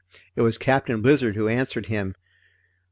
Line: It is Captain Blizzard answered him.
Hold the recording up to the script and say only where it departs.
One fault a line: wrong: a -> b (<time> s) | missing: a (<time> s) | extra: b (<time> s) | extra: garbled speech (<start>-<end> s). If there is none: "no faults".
wrong: is -> was (0.4 s)
extra: who (1.4 s)